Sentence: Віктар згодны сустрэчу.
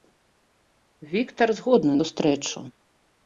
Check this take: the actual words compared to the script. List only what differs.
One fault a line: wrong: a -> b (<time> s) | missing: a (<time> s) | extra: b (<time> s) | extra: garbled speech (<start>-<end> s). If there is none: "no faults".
no faults